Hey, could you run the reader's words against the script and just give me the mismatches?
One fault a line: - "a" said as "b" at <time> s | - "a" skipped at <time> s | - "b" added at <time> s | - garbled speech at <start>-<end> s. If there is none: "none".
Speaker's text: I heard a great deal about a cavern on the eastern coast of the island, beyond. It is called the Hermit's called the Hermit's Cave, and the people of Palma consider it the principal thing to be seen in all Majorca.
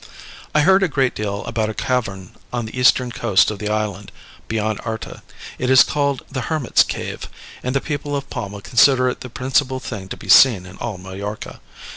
- "Arta" added at 4.8 s
- "called the Hermit's" skipped at 6.8 s